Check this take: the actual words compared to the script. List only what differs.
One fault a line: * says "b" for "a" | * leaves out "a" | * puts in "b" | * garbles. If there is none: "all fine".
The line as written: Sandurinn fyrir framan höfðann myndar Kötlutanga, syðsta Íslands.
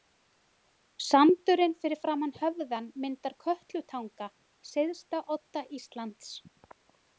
* puts in "odda"